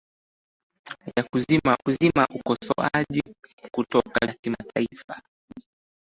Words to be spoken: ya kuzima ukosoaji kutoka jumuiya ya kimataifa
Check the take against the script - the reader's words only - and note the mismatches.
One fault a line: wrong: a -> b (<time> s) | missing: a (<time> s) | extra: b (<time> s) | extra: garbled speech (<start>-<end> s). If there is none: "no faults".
extra: kuzima (1.8 s)
missing: jumuiya (4.3 s)